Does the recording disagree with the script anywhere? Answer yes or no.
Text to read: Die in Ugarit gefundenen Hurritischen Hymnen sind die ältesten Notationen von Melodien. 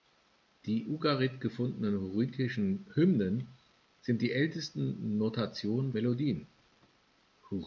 yes